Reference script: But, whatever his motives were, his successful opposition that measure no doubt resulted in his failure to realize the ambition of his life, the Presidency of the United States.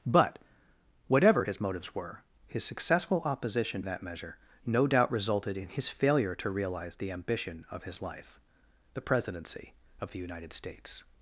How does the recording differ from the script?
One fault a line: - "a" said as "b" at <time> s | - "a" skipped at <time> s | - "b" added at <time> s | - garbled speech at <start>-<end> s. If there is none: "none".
none